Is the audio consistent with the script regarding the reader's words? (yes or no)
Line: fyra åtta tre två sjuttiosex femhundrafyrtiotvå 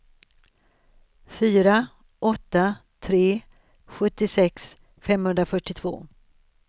no